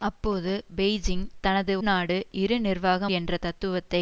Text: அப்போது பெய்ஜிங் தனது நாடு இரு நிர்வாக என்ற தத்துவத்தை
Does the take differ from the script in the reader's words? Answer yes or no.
no